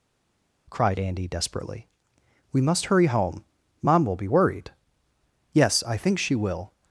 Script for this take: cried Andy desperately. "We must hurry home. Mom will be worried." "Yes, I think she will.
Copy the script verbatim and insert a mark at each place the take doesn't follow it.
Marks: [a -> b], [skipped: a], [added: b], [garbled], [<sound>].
cried Andy desperately. "We must hurry home. Mom will be worried." "Yes, I think she will.